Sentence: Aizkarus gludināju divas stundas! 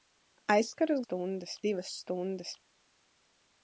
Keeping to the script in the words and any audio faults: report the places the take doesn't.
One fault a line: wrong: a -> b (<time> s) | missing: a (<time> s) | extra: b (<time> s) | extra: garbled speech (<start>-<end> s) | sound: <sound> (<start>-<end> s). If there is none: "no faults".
wrong: gludināju -> stundas (1.0 s)